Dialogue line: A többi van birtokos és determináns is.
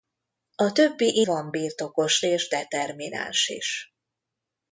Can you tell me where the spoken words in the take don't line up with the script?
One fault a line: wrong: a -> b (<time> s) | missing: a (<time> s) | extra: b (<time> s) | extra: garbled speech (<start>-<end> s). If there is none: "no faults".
no faults